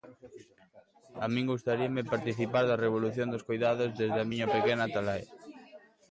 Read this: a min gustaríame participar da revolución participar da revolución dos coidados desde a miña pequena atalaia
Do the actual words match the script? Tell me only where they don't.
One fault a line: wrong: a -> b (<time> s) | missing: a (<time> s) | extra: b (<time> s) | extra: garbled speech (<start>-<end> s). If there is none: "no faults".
missing: participar da revolución (3.3 s)